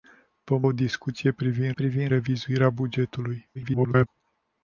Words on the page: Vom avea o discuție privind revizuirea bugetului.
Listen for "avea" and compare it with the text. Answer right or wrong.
wrong